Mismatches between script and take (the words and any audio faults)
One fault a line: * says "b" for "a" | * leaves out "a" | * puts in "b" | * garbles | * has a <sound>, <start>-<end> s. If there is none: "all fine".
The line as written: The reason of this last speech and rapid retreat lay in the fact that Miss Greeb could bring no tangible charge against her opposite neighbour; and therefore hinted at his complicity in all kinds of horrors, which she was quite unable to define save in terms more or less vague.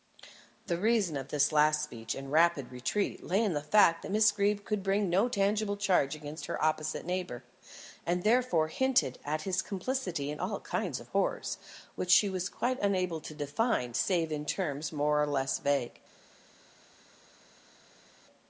all fine